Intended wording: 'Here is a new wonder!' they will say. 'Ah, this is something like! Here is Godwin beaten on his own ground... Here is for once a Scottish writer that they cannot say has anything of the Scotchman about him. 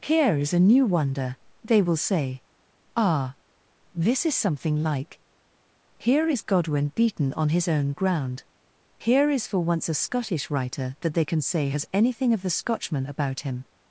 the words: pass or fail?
fail